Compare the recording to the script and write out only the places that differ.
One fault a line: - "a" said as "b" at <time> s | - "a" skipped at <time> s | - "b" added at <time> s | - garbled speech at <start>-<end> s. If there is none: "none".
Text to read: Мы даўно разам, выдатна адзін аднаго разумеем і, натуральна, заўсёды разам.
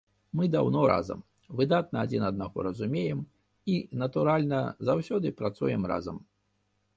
- "працуем" added at 5.4 s